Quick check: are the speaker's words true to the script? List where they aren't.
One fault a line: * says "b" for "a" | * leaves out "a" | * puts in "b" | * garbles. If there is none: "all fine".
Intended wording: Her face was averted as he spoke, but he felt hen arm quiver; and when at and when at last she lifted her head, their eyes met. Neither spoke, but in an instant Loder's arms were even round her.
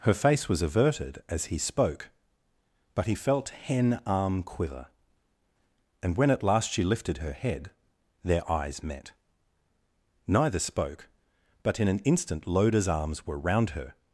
* leaves out "and when at"
* leaves out "even"